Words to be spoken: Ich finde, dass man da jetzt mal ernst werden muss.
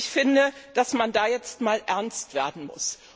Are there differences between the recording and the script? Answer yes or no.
no